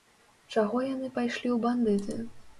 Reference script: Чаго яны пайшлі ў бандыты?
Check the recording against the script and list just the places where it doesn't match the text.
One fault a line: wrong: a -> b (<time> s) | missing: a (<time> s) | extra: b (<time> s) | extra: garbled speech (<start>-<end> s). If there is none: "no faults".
no faults